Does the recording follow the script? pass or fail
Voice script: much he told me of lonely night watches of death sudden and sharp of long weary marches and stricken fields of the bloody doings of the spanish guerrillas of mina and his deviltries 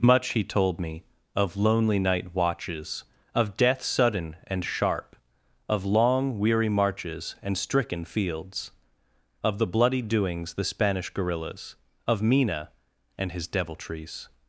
fail